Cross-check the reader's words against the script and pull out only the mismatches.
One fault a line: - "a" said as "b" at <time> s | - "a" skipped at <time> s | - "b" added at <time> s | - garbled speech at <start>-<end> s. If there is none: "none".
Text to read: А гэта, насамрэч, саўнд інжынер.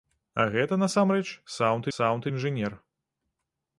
- "саўнд" added at 2.0 s